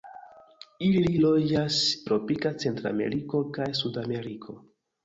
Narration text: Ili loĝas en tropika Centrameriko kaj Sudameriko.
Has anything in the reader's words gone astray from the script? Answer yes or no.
yes